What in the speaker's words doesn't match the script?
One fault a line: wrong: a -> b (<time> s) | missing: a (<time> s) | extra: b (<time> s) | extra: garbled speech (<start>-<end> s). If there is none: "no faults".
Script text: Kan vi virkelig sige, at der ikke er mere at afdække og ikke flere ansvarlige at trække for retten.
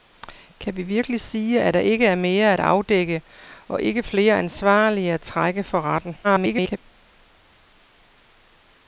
extra: garbled speech (6.2-6.8 s)